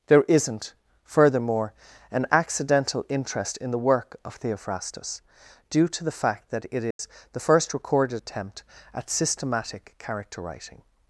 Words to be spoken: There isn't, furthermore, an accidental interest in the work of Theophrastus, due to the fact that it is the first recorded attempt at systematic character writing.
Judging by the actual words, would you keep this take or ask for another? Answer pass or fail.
pass